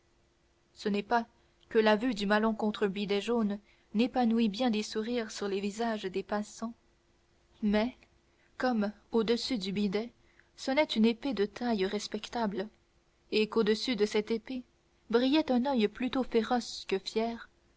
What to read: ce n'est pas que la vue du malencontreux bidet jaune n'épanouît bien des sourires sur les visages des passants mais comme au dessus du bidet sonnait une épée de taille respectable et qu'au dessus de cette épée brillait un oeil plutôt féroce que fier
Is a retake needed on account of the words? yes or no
no